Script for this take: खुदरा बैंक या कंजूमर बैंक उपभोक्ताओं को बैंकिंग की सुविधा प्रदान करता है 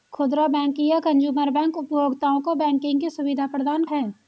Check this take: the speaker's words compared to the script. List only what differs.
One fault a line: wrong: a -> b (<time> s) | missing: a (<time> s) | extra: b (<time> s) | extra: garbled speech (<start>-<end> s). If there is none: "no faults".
missing: करता (3.9 s)